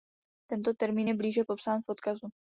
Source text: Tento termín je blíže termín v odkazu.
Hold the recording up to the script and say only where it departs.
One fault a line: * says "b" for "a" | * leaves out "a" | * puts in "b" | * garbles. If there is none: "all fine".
* says "popsán" for "termín"